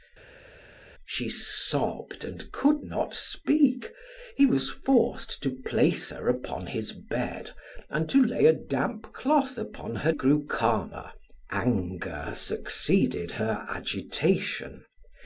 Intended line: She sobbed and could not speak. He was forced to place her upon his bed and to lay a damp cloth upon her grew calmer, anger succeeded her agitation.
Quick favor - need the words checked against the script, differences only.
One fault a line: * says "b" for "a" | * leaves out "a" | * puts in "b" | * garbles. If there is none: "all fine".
all fine